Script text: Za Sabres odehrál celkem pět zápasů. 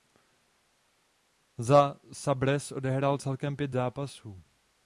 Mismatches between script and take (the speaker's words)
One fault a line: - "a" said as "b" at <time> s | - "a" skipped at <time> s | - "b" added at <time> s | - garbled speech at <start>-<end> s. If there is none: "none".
none